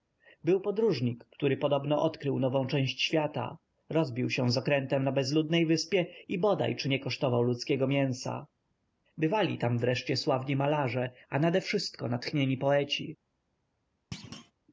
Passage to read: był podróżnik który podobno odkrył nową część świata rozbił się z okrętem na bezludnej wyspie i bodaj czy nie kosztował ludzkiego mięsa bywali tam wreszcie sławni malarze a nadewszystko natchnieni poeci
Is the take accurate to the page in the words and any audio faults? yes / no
no